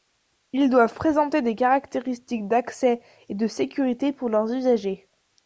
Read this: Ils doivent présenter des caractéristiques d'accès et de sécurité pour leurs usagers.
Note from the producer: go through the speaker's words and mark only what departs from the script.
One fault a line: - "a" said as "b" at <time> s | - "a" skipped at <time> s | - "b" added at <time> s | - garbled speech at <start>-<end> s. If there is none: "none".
none